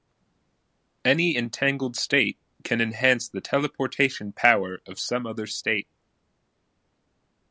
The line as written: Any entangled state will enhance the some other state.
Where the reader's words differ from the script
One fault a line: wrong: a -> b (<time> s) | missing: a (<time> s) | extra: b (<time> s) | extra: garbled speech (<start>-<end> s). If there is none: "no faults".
wrong: will -> can (2.6 s)
extra: teleportation power of (3.4 s)